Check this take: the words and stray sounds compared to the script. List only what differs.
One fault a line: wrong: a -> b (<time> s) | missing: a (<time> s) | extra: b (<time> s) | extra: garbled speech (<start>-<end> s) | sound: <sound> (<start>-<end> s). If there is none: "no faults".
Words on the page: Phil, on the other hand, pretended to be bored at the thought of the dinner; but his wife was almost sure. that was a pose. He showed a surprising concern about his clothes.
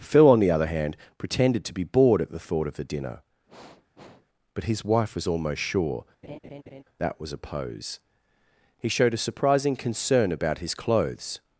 sound: sniff (3.5-4.3 s)
sound: laugh (6.2-6.8 s)